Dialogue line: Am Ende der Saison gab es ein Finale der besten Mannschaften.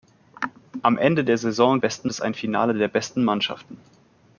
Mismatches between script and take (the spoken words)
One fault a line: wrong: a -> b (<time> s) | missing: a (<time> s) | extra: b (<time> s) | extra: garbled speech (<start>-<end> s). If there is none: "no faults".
wrong: gab -> besten (1.8 s)